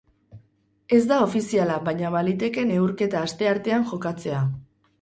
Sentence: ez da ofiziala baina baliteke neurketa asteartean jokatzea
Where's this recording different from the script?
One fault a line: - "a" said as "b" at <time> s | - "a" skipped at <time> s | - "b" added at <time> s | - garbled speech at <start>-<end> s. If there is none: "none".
none